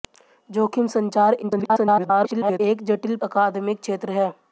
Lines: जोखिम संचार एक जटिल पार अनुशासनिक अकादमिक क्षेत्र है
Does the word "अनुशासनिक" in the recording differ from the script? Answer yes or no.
yes